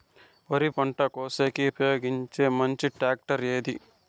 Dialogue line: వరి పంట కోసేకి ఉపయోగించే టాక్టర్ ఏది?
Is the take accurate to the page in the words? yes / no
no